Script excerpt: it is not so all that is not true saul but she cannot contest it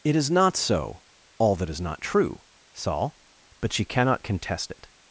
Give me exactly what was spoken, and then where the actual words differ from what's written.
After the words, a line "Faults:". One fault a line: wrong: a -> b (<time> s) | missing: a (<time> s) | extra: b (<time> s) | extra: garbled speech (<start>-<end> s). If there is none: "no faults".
it is not so all that is not true saul but she cannot contest it
Faults:
no faults